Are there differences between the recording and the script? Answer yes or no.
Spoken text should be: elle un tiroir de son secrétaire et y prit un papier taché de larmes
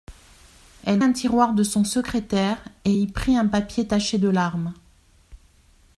no